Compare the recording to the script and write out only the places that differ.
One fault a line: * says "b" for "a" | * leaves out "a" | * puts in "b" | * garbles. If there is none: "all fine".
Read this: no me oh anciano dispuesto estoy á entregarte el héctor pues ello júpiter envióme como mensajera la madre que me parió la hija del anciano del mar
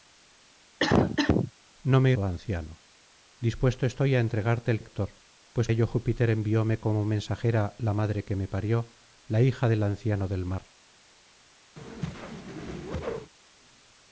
all fine